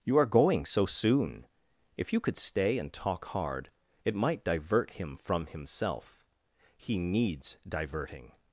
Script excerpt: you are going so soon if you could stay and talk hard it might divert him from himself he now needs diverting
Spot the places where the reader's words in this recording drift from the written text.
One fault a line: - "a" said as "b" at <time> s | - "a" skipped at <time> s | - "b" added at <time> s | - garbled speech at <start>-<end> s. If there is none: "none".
- "now" skipped at 7.0 s